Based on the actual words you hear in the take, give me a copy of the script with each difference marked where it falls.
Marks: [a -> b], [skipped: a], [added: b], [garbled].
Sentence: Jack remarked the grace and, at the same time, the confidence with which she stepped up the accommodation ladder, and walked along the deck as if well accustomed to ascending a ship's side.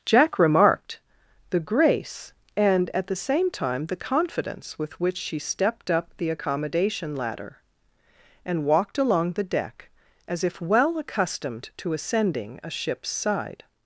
Jack remarked the grace and, at the same time, the confidence with which she stepped up the accommodation ladder, and walked along the deck as if well accustomed to ascending a ship's side.